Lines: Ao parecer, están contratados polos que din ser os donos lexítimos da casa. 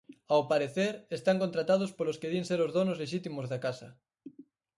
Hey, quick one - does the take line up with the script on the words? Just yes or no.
yes